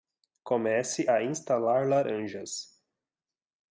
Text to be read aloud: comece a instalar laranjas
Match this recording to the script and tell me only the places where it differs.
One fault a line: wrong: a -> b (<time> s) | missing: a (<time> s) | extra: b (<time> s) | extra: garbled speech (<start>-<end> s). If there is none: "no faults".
no faults